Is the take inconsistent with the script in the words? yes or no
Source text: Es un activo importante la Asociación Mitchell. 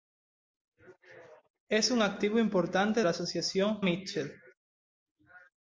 no